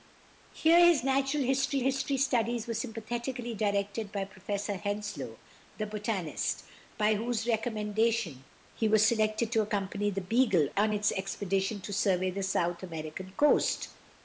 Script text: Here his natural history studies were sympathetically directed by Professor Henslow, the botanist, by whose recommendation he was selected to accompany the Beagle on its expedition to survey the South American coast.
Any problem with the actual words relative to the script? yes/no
yes